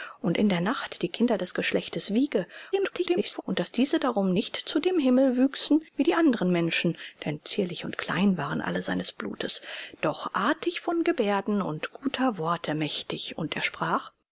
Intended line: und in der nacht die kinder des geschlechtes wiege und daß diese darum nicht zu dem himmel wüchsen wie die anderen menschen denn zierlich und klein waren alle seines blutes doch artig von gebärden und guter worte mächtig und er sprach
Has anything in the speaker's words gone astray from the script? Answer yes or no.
yes